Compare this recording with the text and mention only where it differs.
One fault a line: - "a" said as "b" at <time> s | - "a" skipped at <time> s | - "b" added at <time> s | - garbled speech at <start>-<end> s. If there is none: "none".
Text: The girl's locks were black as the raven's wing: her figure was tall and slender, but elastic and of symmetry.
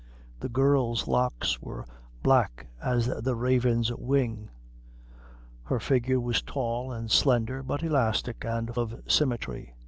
none